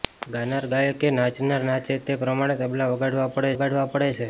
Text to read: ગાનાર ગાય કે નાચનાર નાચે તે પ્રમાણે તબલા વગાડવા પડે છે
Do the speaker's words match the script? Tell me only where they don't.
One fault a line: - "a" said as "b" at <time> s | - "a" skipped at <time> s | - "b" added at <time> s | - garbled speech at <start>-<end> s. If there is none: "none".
- "વગાડવા પડે" added at 3.5 s